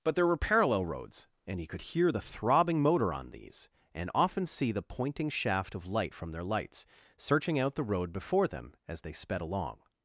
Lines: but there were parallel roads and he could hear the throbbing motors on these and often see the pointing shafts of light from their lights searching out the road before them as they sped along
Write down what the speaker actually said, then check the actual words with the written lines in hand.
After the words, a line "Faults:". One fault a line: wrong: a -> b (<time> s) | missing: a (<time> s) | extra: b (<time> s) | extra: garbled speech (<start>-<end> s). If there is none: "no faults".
but there were parallel roads and he could hear the throbbing motor on these and often see the pointing shaft of light from their lights searching out the road before them as they sped along
Faults:
wrong: motors -> motor (2.8 s)
wrong: shafts -> shaft (5.3 s)